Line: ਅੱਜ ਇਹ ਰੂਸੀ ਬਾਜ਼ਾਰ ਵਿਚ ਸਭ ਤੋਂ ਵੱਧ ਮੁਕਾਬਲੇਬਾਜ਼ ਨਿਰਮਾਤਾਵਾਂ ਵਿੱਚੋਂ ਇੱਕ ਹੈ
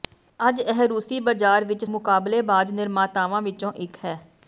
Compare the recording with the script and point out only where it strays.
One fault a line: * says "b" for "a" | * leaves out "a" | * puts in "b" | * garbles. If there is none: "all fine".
* leaves out "ਸਭ ਤੋਂ ਵੱਧ"